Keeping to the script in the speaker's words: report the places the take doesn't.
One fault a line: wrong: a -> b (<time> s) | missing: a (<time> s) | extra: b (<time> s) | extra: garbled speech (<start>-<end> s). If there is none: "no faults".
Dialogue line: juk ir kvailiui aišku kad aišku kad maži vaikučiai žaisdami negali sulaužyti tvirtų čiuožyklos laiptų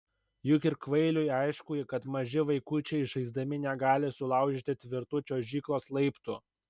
missing: aišku kad (2.1 s)